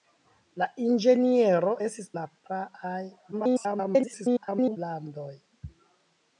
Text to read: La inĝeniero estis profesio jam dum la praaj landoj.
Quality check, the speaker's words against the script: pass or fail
fail